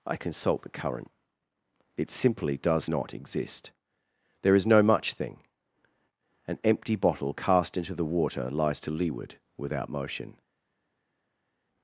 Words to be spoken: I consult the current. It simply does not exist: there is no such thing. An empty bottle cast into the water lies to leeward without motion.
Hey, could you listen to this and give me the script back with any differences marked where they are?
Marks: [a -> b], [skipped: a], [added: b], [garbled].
I consult the current. It simply does not exist: there is no [such -> much] thing. An empty bottle cast into the water lies to leeward without motion.